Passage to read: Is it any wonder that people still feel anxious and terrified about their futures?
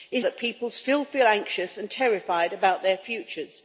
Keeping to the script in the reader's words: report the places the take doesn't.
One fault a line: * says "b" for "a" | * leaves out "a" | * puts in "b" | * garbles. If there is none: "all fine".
* leaves out "it any wonder"